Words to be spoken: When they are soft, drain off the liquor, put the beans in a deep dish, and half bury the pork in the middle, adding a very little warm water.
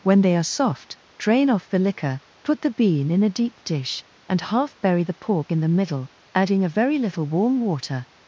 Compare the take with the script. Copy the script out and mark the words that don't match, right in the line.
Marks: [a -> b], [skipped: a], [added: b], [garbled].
When they are soft, drain off the liquor, put the [beans -> bean] in a deep dish, and half bury the pork in the middle, adding a very little warm water.